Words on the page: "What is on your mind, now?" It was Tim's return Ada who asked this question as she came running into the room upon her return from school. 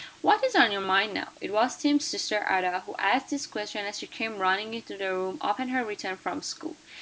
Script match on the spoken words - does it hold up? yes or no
no